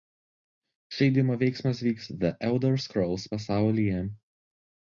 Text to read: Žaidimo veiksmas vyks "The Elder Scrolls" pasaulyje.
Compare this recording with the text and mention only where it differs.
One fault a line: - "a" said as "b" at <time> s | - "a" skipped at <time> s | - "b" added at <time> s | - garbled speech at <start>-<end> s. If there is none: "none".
none